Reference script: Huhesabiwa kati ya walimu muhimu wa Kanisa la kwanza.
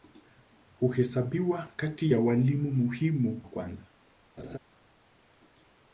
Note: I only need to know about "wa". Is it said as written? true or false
false